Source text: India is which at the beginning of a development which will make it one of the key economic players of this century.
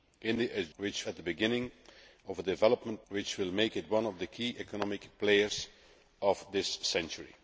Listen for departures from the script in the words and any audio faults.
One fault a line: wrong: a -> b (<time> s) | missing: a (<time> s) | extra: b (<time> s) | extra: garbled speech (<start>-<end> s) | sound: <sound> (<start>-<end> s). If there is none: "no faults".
no faults